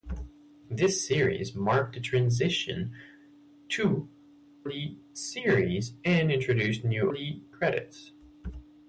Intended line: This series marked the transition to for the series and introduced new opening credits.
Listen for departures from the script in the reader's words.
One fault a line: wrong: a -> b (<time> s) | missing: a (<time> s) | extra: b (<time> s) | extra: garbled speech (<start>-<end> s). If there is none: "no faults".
missing: for (4.1 s)
wrong: opening -> the (7.1 s)